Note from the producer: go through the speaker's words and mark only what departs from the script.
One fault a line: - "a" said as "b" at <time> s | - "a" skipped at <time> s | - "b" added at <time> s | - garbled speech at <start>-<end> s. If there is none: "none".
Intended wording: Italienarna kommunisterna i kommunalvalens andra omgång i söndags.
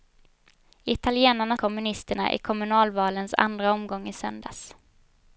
none